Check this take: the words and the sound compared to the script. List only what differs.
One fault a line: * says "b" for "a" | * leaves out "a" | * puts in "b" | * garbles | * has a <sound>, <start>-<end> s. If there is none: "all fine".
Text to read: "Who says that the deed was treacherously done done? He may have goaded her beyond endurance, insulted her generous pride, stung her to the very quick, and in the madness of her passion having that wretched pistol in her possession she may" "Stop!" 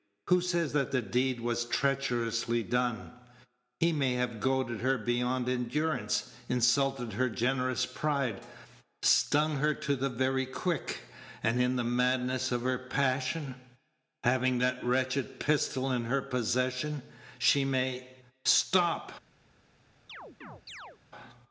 * leaves out "done"
* has a chirp, 20.1-21.0 s